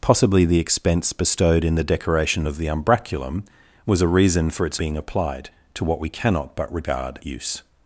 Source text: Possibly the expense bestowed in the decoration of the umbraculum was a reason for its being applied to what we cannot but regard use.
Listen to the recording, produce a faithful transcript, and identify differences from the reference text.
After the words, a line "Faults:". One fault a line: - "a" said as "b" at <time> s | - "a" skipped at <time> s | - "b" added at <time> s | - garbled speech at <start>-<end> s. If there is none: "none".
Possibly the expense bestowed in the decoration of the umbraculum was a reason for its being applied to what we cannot but regard use.
Faults:
none